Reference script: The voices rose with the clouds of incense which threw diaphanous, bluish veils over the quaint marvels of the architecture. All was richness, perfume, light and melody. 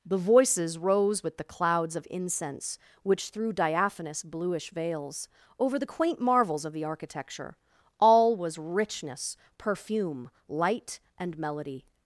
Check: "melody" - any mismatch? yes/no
no